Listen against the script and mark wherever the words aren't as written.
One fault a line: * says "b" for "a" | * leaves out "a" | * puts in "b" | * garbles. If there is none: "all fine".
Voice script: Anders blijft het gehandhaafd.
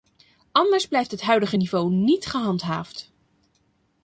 * puts in "huidige niveau niet"